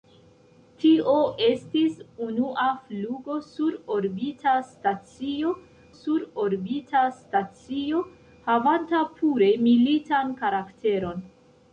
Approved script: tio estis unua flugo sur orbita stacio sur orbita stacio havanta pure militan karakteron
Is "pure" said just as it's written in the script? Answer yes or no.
yes